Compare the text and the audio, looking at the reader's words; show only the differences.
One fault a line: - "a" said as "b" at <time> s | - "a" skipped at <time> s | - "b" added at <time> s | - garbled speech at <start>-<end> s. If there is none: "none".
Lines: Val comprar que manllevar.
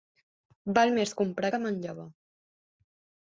- "més" added at 0.9 s